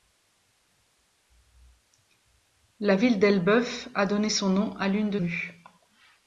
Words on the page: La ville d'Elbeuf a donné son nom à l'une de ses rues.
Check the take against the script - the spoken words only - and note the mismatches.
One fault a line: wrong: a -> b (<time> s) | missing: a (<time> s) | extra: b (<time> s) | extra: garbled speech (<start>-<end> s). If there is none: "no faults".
missing: ses (5.2 s)